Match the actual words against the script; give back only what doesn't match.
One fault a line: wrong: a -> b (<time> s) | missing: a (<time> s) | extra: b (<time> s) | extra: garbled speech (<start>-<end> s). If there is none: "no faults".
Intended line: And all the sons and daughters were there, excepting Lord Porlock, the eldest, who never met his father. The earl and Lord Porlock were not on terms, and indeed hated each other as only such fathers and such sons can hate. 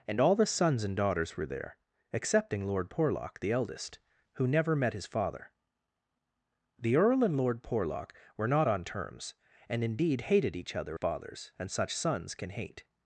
missing: as only such (11.0 s)